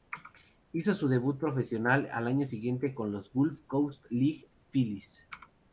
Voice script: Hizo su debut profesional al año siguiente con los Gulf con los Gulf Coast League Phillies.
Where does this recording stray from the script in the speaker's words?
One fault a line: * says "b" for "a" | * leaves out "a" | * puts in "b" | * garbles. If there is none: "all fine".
* leaves out "con los Gulf"